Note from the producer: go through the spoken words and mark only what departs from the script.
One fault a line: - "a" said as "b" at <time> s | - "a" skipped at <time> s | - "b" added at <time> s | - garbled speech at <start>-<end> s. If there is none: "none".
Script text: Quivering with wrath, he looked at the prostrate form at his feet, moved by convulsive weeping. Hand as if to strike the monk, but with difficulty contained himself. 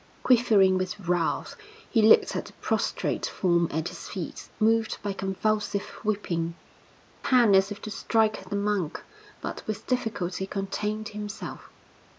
none